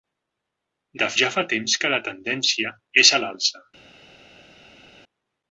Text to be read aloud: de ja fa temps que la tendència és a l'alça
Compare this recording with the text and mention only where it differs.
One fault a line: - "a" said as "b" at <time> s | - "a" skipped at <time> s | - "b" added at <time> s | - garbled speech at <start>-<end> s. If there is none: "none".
none